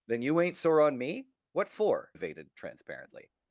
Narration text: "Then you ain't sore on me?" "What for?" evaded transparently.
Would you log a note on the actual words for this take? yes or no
no